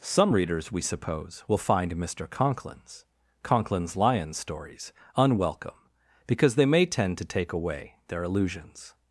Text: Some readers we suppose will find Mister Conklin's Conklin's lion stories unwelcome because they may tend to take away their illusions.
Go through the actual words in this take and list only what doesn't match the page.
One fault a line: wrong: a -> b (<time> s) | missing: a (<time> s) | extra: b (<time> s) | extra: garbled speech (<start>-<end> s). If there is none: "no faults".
no faults